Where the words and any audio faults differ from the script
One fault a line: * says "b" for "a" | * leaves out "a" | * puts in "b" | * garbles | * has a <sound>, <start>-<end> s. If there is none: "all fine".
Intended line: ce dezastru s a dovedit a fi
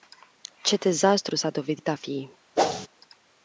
* has a whoosh, 2.6-2.9 s